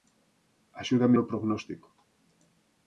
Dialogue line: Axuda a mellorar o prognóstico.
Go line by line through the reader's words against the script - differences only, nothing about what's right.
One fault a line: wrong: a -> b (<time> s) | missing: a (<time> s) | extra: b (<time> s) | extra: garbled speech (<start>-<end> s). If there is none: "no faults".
missing: mellorar (1.1 s)